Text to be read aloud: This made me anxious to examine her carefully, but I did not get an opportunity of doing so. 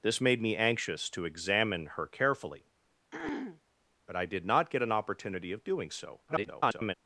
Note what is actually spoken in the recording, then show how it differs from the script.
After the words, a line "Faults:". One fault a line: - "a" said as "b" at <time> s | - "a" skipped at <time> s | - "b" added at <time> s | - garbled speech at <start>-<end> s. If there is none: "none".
This made me anxious to examine her carefully, but I did not get an opportunity of doing so. [garbled]
Faults:
- garbled speech at 6.3-6.9 s